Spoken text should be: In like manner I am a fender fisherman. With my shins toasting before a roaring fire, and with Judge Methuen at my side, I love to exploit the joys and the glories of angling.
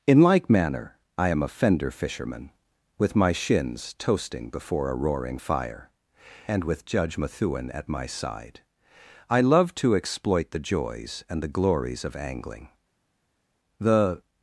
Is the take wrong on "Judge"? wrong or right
right